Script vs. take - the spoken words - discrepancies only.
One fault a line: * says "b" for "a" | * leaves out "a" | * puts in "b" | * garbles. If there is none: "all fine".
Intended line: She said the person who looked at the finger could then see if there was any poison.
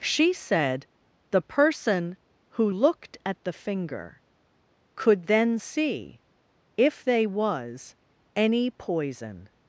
* says "they" for "there"